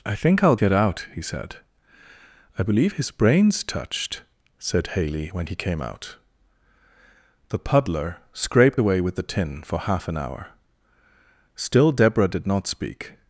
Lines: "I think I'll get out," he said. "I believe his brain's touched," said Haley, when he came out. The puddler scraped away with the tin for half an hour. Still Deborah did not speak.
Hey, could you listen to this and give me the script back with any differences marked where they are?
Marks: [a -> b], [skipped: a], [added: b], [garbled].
"I think I'll get out," he said. "I believe his brain's touched," said Haley, when he came out. The puddler scraped away with the tin for half an hour. Still Deborah did not speak.